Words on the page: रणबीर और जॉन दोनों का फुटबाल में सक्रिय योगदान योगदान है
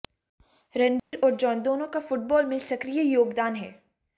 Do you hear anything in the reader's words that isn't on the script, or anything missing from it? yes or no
yes